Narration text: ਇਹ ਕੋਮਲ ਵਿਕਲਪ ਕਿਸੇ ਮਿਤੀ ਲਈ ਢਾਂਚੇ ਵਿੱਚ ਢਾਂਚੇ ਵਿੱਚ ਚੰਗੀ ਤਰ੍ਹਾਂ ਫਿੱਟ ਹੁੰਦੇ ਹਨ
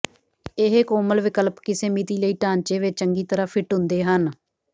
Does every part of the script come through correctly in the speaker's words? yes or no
no